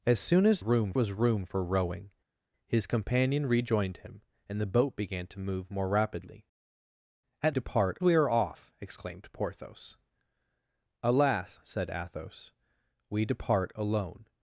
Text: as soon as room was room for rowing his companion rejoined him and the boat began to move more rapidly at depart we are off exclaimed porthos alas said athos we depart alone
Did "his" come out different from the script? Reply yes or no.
no